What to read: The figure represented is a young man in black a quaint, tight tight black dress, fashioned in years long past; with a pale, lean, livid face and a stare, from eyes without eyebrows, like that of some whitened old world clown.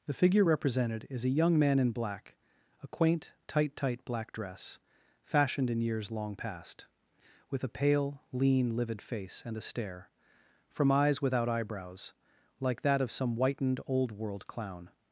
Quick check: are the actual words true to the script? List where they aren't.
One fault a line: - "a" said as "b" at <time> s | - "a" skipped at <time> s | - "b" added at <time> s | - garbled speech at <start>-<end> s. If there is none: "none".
none